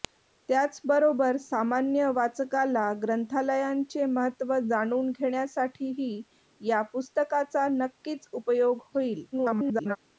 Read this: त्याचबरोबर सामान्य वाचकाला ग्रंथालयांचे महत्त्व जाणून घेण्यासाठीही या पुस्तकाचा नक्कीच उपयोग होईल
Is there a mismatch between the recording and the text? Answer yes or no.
yes